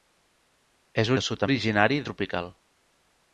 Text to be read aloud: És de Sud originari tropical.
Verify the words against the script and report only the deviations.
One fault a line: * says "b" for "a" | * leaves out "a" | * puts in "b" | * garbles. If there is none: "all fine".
all fine